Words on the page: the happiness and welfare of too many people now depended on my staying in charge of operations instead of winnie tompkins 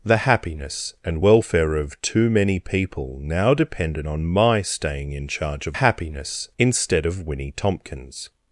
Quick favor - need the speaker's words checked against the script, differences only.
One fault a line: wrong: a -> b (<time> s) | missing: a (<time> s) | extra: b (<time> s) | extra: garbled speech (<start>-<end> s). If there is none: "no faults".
wrong: operations -> happiness (5.7 s)